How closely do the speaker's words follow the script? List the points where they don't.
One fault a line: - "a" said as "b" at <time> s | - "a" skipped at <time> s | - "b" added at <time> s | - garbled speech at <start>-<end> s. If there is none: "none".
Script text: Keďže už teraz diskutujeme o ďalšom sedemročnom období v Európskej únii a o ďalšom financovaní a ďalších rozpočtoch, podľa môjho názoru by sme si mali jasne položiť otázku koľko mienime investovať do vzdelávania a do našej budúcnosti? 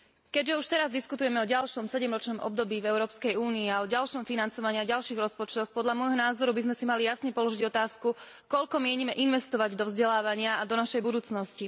none